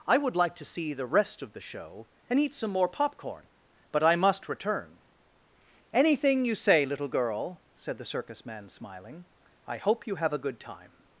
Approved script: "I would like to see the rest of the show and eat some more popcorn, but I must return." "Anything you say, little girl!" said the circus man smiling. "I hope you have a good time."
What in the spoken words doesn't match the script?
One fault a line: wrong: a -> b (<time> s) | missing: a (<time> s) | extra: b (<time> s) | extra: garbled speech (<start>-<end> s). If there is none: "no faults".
no faults